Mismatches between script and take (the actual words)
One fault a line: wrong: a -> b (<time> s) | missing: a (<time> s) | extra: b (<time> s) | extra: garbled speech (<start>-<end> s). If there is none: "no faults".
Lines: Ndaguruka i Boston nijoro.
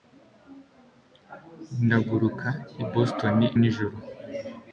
no faults